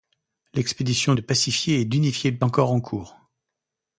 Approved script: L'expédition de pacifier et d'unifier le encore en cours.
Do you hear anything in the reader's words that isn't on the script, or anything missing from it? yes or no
no